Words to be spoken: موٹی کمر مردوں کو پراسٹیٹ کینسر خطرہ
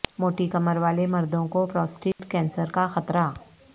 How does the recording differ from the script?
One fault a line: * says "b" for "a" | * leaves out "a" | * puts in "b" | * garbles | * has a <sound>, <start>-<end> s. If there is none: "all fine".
* puts in "والے"
* has a dropout, 2.1-2.2 s
* puts in "کا"